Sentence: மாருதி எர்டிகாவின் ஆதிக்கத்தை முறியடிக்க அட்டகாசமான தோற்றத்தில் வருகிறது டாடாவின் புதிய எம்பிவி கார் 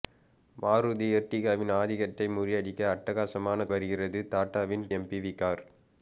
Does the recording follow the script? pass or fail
fail